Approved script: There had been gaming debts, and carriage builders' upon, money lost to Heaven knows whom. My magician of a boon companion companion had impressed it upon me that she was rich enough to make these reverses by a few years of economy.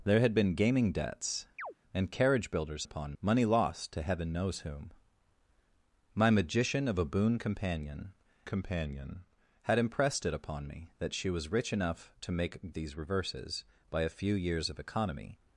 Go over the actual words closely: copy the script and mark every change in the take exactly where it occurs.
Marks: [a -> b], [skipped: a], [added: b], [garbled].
There had been gaming debts, and carriage builders' upon, money lost to Heaven knows whom. My magician of a boon companion companion had impressed it upon me that she was rich enough to make these reverses by a few years of economy.